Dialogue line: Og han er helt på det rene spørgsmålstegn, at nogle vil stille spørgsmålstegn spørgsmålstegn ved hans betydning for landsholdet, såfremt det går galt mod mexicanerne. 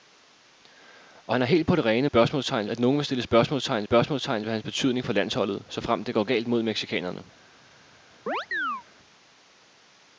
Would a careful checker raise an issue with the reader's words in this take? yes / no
no